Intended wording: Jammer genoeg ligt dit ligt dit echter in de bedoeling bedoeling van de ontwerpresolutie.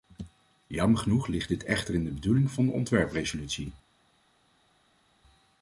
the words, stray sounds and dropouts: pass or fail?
fail